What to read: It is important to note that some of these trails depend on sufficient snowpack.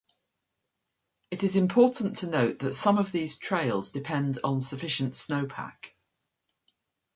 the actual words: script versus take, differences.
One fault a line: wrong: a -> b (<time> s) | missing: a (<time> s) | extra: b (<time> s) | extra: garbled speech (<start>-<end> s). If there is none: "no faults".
no faults